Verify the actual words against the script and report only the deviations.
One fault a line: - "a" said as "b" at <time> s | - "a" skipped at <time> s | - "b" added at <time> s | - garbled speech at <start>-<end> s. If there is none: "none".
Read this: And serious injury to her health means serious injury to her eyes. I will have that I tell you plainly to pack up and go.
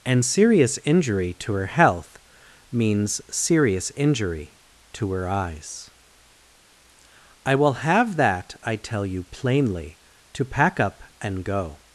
none